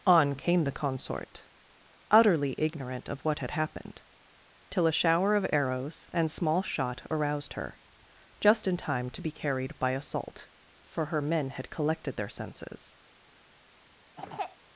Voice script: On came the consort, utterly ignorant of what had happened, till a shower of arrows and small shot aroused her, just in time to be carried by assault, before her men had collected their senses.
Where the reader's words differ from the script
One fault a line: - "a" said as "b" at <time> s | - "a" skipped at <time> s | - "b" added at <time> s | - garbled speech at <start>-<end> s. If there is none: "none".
- "before" said as "for" at 10.8 s